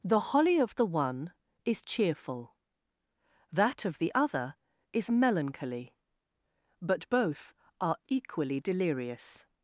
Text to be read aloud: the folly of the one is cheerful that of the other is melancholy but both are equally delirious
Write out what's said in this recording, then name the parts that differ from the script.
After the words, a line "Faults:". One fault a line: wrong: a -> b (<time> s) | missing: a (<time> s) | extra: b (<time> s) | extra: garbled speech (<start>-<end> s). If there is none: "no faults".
the holly of the one is cheerful that of the other is melancholy but both are equally delirious
Faults:
wrong: folly -> holly (0.3 s)